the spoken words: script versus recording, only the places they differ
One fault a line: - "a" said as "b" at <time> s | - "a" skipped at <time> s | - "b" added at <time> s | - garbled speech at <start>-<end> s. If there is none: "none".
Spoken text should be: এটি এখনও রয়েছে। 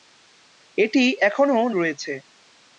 none